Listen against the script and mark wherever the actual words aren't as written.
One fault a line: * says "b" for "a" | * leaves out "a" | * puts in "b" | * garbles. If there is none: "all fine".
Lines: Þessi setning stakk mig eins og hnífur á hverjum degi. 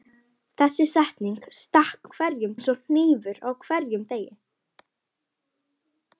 * says "hverjum" for "mig"